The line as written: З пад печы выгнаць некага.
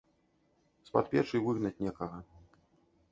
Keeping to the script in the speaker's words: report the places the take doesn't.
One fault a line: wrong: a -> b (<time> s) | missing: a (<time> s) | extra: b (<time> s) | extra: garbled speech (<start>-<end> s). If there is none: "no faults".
no faults